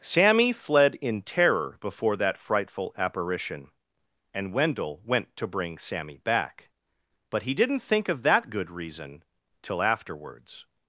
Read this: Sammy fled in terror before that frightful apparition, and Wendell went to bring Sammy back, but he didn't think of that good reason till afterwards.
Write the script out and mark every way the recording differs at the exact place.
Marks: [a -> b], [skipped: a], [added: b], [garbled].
Sammy fled in terror before that frightful apparition, and Wendell went to bring Sammy back, but he didn't think of that good reason till afterwards.